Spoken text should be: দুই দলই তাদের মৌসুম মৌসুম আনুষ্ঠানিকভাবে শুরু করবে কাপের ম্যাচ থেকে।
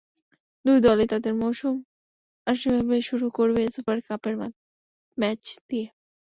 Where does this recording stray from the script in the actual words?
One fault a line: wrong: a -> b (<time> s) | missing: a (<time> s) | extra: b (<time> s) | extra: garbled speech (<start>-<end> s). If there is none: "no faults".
missing: মৌসুম (1.7 s)
extra: সুপার (3.7 s)
wrong: থেকে -> দিয়ে (5.7 s)